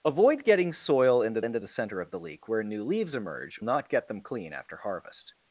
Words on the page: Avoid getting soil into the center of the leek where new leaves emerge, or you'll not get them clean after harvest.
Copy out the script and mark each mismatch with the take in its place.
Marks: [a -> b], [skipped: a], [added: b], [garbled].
Avoid getting soil into [added: into] the center of the leek where new leaves emerge, [skipped: or you'll] not get them clean after harvest.